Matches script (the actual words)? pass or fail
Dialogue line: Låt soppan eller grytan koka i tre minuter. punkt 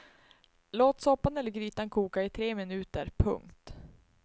pass